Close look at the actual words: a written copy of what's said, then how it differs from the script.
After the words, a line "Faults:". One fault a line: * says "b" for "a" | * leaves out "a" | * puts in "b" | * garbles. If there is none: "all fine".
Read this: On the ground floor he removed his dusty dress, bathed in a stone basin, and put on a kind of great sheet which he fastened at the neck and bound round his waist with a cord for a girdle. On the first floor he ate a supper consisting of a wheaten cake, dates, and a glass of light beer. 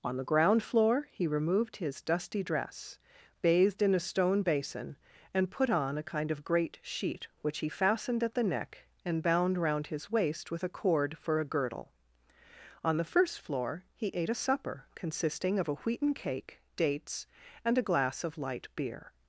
On the ground floor he removed his dusty dress, bathed in a stone basin, and put on a kind of great sheet which he fastened at the neck and bound round his waist with a cord for a girdle. On the first floor he ate a supper consisting of a wheaten cake, dates, and a glass of light beer.
Faults:
all fine